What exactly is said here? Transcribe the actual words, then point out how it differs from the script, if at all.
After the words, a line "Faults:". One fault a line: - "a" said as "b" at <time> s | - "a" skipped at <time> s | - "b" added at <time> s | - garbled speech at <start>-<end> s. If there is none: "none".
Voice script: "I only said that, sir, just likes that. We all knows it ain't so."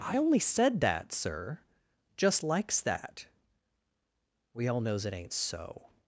"I only said that, sir, just likes that. We all knows it ain't so."
Faults:
none